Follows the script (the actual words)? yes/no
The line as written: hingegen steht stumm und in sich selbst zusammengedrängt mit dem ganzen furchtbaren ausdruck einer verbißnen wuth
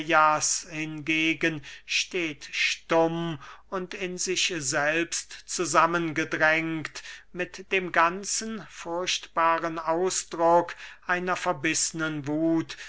yes